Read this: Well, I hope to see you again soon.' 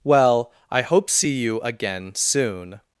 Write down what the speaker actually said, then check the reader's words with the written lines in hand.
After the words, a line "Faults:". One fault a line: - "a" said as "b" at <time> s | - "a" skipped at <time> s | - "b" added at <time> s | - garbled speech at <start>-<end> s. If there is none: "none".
Well, I hope see you again soon.'
Faults:
- "to" skipped at 1.1 s